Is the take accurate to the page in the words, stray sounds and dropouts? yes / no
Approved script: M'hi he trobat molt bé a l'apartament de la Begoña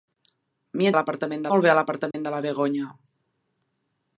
no